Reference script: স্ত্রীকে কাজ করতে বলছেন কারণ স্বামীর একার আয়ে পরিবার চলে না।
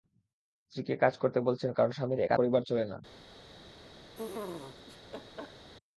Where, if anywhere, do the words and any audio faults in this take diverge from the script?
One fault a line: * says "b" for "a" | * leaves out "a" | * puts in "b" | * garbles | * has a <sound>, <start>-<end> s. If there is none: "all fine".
* leaves out "আয়ে"
* has a laugh, 4.1-5.7 s